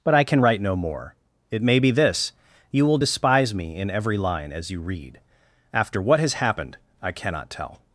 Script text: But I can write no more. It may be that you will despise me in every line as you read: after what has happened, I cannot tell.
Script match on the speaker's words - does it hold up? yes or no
no